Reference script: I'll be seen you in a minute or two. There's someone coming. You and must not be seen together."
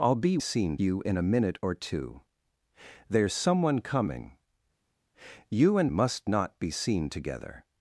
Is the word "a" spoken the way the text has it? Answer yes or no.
yes